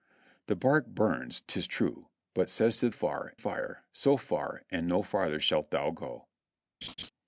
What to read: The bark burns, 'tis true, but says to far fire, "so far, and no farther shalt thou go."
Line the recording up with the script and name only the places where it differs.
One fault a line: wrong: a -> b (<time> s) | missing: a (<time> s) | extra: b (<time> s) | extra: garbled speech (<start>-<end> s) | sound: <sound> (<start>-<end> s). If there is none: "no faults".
sound: laugh (6.8-7.1 s)